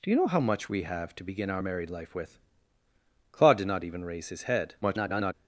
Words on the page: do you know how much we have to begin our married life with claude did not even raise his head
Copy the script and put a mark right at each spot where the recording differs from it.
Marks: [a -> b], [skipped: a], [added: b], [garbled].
do you know how much we have to begin our married life with claude did not even raise his head [garbled]